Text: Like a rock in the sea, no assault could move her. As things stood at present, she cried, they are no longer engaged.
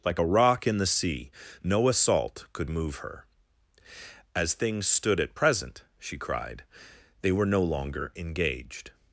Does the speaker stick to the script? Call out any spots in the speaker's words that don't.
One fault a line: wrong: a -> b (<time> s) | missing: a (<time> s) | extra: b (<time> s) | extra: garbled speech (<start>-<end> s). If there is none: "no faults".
wrong: are -> were (7.3 s)